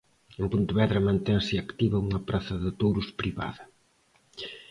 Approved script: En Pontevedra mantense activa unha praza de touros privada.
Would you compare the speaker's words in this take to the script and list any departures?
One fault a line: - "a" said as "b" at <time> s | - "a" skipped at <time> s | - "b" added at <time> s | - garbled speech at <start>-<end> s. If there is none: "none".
none